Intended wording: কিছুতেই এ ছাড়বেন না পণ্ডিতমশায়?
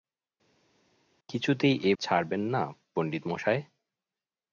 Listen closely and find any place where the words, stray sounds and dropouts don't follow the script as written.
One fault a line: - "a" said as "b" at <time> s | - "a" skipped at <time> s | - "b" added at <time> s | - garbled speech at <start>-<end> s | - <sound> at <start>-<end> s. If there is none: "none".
none